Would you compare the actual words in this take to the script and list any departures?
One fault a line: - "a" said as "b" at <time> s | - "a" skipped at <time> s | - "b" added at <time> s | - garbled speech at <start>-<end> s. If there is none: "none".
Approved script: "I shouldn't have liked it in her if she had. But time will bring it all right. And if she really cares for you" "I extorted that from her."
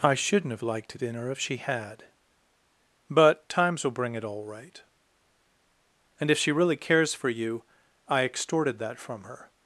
- "time" said as "times" at 3.5 s